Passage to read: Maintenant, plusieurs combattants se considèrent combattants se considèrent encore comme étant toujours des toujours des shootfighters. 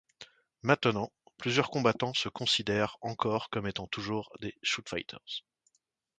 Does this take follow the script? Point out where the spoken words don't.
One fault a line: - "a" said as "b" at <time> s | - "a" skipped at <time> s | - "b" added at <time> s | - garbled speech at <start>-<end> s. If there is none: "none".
- "combattants se considèrent" skipped at 3.0 s
- "toujours des" skipped at 4.6 s